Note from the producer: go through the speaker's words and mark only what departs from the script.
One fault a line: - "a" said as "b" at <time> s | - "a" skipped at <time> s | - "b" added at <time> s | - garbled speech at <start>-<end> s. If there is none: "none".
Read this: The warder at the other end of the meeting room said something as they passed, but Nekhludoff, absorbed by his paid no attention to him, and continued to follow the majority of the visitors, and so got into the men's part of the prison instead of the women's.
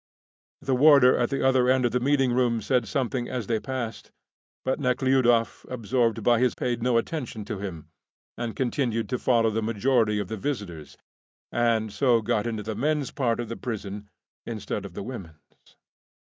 none